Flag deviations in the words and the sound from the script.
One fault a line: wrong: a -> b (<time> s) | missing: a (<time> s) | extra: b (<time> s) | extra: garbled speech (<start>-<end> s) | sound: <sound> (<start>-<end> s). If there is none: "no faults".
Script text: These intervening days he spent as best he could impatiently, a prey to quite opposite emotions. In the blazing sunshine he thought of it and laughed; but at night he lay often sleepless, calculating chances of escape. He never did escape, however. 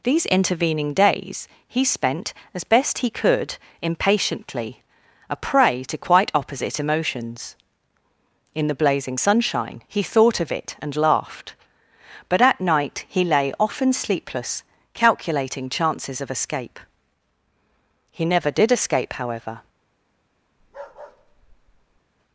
sound: bark (20.6-22.0 s)